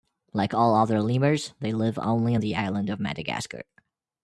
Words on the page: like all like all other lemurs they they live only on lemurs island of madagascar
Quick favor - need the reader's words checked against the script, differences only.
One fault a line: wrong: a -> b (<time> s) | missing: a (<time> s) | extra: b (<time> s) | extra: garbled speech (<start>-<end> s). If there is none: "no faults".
missing: like all (0.7 s)
missing: they (1.7 s)
wrong: lemurs -> the (2.4 s)